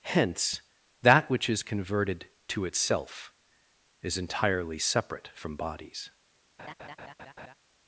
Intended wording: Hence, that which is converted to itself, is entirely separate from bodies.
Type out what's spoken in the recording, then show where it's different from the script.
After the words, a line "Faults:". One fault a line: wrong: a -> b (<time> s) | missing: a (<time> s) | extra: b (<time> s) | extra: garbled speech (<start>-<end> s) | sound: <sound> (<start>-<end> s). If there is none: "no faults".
Hence, that which is converted to itself, is entirely separate from bodies.
Faults:
sound: laugh (6.6-7.5 s)